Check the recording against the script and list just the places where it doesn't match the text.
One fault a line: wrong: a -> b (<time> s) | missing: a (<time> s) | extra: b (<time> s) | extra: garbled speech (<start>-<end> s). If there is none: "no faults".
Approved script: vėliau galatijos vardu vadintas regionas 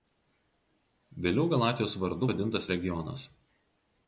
no faults